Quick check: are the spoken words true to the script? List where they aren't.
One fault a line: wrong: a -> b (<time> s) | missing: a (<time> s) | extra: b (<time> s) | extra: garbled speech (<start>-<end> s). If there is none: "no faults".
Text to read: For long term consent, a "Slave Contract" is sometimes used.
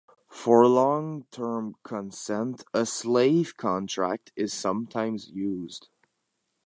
no faults